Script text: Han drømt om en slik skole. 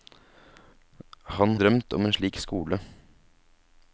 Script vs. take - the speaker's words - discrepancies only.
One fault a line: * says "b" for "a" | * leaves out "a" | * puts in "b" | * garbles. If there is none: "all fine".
all fine